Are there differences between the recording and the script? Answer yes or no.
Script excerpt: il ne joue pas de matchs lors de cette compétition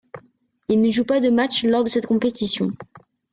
no